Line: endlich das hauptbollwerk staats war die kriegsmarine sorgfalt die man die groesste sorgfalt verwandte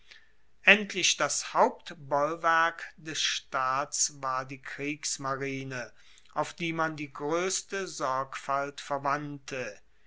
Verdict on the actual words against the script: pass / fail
fail